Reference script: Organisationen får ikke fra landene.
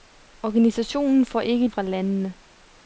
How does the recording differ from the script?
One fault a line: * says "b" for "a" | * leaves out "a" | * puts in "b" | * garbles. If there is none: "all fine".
all fine